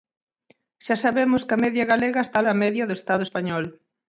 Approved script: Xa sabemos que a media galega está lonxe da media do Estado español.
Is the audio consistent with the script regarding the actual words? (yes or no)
no